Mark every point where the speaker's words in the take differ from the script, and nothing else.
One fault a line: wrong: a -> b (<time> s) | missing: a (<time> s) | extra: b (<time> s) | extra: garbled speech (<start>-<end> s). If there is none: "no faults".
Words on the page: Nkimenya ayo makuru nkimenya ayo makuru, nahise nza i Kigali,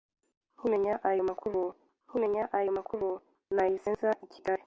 no faults